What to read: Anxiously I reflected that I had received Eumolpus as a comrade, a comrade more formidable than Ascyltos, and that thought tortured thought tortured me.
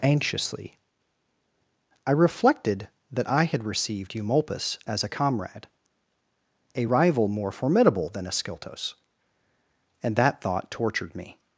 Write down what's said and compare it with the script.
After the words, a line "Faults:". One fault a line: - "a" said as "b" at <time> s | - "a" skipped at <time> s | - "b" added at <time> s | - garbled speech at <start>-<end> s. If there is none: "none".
Anxiously I reflected that I had received Eumolpus as a comrade, a rival more formidable than Ascyltos, and that thought tortured me.
Faults:
- "comrade" said as "rival" at 6.8 s
- "thought tortured" skipped at 11.1 s